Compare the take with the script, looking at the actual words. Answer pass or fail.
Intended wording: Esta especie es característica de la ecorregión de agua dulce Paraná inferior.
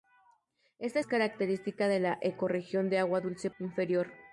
fail